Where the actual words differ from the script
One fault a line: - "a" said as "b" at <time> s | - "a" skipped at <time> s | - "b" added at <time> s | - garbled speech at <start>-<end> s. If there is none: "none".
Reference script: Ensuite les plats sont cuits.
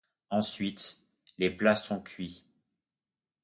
none